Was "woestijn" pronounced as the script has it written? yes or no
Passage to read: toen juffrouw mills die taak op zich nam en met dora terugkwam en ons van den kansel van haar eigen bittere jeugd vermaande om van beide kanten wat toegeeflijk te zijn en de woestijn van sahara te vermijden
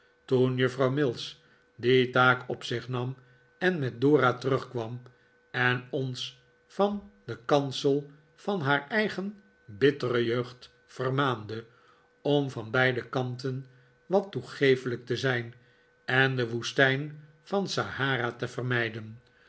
yes